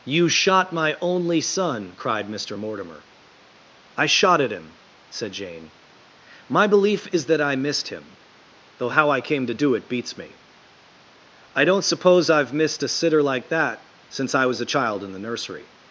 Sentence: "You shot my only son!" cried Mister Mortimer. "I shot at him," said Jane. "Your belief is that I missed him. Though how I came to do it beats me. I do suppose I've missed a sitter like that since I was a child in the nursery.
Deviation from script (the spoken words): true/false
true